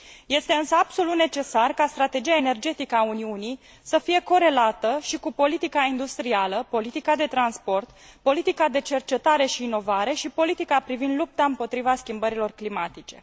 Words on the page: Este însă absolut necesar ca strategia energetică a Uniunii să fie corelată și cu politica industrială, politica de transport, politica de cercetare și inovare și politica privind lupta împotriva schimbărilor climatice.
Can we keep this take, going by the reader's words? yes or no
yes